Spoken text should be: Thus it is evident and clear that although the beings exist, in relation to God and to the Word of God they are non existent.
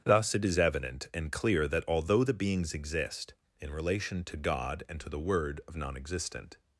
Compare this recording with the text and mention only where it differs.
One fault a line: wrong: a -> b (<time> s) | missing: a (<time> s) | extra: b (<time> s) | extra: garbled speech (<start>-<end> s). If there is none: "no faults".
missing: God they are (5.8 s)